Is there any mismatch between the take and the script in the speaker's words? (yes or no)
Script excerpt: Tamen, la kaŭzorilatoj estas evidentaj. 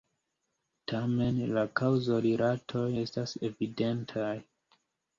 no